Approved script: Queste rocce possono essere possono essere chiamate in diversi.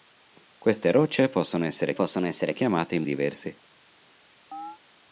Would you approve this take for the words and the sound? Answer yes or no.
no